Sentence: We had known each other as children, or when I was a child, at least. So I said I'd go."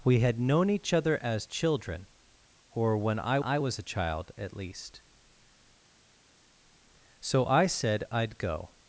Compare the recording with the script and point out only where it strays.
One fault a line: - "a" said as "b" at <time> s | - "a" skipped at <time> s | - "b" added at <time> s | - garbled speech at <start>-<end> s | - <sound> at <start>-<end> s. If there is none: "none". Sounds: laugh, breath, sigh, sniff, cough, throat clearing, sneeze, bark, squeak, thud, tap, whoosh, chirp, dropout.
- "I" added at 3.4 s